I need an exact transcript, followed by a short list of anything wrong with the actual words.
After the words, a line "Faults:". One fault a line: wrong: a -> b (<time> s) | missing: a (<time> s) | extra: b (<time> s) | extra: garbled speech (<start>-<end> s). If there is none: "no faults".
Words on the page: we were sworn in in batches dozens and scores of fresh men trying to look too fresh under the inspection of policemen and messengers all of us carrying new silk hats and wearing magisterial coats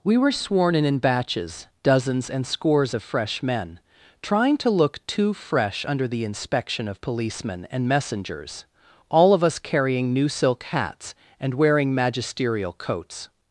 we were sworn in in batches dozens and scores of fresh men trying to look too fresh under the inspection of policemen and messengers all of us carrying new silk hats and wearing magisterial coats
Faults:
no faults